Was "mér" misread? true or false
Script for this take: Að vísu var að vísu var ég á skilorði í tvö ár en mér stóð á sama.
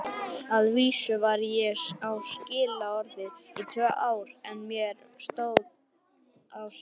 false